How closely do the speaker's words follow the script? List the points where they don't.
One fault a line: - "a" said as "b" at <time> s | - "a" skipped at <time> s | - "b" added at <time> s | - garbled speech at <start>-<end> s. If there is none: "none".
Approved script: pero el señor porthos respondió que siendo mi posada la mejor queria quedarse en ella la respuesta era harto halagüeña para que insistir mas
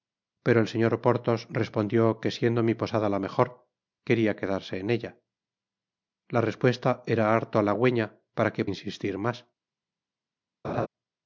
none